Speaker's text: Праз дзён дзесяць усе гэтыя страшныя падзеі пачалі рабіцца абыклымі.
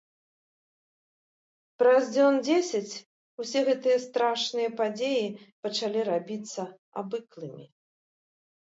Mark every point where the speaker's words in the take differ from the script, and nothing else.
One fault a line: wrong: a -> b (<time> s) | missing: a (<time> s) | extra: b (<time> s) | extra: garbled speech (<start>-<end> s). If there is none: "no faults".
no faults